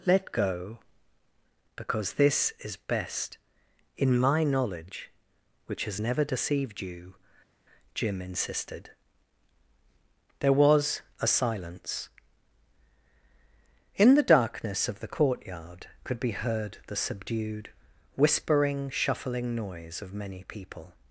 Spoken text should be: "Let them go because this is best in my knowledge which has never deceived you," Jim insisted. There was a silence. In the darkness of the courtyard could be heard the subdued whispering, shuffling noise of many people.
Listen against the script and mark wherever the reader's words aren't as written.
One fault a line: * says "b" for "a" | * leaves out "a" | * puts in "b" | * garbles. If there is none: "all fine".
* leaves out "them"